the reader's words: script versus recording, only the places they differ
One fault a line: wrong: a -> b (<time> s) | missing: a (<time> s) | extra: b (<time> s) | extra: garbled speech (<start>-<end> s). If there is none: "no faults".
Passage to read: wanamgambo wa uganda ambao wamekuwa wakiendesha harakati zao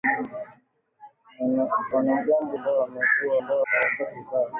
missing: wa uganda (2.6 s)
wrong: wakiendesha -> ambao (3.4 s)